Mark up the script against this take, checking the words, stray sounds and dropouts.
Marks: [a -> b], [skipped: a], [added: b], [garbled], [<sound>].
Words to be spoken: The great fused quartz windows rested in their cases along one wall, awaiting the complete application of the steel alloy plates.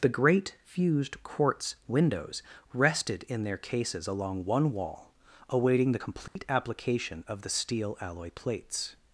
The great fused quartz windows rested in their cases along one wall, awaiting the complete [dropout] application of the steel alloy plates.